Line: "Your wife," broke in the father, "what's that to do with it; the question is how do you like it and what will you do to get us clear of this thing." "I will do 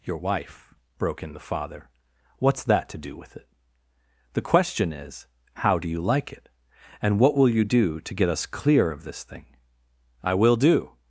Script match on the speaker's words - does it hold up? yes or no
yes